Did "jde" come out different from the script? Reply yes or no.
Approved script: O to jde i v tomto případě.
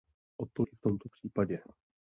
yes